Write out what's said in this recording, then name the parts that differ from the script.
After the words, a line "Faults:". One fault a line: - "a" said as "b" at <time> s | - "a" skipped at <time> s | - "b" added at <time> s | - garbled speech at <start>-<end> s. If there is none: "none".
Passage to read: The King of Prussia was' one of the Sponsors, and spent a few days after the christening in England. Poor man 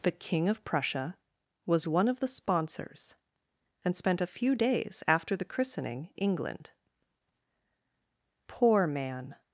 The King of Prussia was' one of the Sponsors, and spent a few days after the christening England. Poor man
Faults:
- "in" skipped at 6.1 s